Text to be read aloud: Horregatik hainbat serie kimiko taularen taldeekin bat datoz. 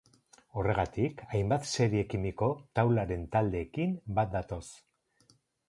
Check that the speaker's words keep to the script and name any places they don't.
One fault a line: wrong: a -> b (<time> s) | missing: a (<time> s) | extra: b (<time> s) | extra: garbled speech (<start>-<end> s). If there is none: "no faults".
no faults